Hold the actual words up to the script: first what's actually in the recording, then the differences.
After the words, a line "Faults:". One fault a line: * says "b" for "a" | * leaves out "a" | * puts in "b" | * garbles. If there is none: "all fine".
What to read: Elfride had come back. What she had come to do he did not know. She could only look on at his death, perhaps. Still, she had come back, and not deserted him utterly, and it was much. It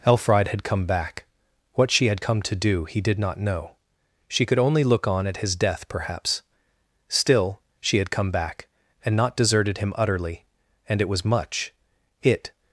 Elfride had come back. What she had come to do he did not know. She could only look on at his death, perhaps. Still, she had come back, and not deserted him utterly, and it was much. It
Faults:
all fine